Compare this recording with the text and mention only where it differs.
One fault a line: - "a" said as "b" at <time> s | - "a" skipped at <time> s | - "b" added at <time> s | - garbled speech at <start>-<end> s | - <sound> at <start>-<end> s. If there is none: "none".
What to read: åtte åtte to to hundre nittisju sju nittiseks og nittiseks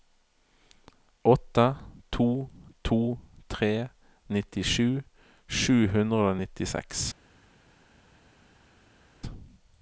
- "åtte" skipped at 1.8 s
- "hundre" said as "tre" at 3.5 s
- "nittiseks" said as "hundre" at 6.0 s